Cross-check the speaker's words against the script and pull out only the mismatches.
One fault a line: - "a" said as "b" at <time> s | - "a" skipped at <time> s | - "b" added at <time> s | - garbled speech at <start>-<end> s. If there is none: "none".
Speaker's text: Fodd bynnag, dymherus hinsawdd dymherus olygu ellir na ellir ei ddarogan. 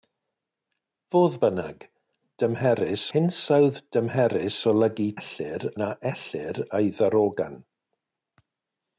none